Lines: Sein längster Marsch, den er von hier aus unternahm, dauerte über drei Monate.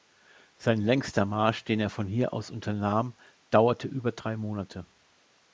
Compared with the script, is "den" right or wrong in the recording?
right